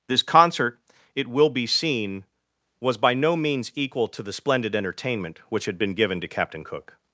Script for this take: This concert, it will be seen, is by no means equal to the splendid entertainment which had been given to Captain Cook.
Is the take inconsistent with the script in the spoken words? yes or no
yes